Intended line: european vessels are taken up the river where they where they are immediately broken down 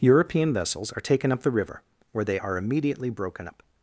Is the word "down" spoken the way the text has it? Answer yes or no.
no